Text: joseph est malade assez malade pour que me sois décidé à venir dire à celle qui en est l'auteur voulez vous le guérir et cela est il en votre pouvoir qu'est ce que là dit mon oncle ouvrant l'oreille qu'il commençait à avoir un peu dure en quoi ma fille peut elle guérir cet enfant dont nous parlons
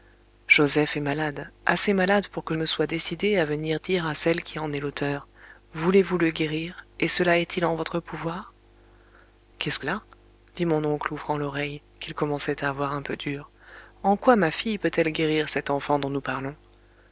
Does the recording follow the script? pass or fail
pass